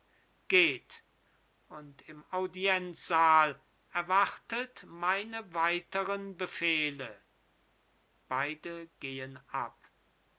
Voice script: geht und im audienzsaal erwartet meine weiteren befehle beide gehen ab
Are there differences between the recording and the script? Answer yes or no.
no